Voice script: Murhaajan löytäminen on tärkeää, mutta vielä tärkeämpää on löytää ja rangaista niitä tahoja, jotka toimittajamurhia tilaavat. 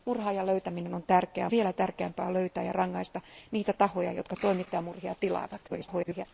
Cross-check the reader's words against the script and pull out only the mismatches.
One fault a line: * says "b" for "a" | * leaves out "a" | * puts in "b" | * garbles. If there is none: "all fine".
* leaves out "mutta"
* garbles